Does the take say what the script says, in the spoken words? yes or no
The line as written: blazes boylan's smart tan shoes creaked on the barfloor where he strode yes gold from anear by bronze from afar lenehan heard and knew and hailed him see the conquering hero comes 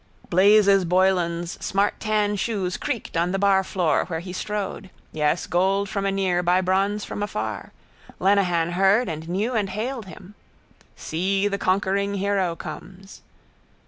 yes